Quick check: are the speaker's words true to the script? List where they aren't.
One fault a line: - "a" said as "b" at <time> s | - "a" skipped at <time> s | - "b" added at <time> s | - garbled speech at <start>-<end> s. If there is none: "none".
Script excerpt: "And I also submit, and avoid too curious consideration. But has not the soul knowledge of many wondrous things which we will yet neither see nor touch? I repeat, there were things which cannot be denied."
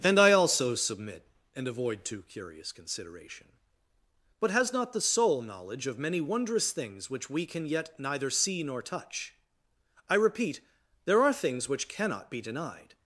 - "will" said as "can" at 7.5 s
- "were" said as "are" at 11.2 s